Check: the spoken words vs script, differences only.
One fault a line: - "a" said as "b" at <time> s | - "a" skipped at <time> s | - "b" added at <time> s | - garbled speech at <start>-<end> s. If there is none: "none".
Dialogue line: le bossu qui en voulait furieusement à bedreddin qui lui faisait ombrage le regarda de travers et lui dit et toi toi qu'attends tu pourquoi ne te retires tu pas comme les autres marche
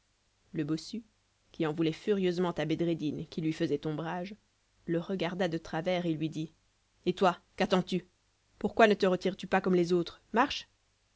- "toi" skipped at 7.4 s